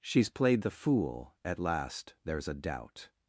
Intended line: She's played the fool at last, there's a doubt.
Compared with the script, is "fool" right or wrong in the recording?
right